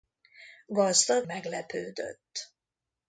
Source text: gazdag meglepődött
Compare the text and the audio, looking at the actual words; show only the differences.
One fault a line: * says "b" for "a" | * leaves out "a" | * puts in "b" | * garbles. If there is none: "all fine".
all fine